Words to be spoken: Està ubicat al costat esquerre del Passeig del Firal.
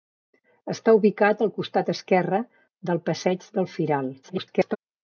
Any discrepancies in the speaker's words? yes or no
yes